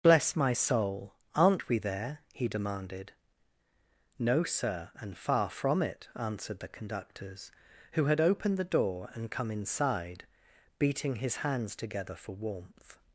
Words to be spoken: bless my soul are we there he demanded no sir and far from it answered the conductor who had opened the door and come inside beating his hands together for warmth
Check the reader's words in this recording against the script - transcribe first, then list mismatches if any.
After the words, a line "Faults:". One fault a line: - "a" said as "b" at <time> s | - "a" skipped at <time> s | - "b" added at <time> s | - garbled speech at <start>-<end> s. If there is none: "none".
bless my soul aren't we there he demanded no sir and far from it answered the conductors who had opened the door and come inside beating his hands together for warmth
Faults:
- "are" said as "aren't" at 1.4 s
- "conductor" said as "conductors" at 6.7 s